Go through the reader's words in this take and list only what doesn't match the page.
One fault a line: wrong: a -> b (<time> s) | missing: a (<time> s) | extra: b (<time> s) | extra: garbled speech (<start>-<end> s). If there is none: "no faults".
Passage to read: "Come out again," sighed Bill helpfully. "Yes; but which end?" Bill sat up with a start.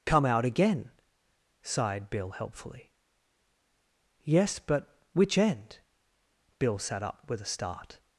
no faults